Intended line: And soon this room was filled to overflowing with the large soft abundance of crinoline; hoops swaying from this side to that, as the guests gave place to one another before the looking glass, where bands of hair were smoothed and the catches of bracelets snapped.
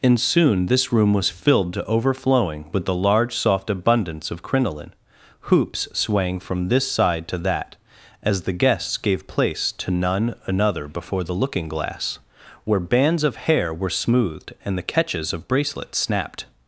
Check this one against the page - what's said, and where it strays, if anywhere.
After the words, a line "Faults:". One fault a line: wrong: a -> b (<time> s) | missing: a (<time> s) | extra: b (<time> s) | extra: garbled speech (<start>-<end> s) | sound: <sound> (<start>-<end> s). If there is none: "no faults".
And soon this room was filled to overflowing with the large soft abundance of crinoline; hoops swaying from this side to that, as the guests gave place to none another before the looking glass, where bands of hair were smoothed and the catches of bracelets snapped.
Faults:
wrong: one -> none (9.9 s)